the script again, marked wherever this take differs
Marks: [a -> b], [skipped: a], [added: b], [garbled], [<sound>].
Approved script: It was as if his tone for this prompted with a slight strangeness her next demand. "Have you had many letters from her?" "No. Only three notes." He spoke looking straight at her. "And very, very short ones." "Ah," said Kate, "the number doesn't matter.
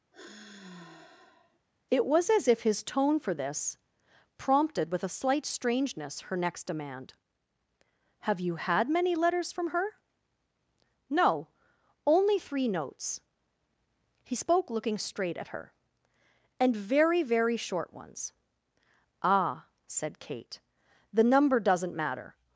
[sigh] It was as if his tone for this prompted with a slight strangeness her next demand. "Have you had many letters from her?" "No. Only three notes." He spoke looking straight at her. "And very, very short ones." "Ah," said Kate, "the number doesn't matter.